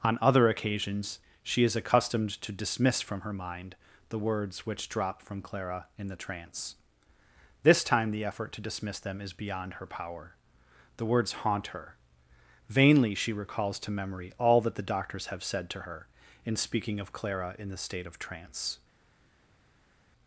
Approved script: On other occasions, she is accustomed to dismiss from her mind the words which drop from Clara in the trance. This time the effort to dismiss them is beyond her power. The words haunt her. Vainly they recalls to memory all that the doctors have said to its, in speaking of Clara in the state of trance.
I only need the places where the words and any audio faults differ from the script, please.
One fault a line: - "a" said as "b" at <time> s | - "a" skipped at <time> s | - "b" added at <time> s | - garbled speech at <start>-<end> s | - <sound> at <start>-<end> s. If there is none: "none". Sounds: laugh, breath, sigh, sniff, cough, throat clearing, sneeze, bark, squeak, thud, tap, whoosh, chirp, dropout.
- "they" said as "she" at 13.1 s
- "its" said as "her" at 15.8 s